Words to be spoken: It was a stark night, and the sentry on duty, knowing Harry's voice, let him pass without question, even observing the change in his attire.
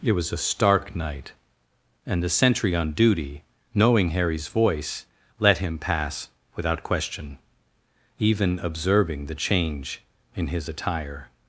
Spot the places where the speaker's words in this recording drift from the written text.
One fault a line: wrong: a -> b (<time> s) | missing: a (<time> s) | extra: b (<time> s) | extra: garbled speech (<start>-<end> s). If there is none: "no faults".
no faults